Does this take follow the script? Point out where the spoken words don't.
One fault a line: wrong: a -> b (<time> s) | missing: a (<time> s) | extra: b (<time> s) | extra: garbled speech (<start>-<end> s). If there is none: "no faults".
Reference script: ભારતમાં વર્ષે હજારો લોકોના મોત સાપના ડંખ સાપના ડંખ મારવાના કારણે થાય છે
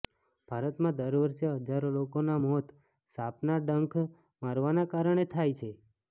extra: દર (0.9 s)
missing: સાપના ડંખ (4.0 s)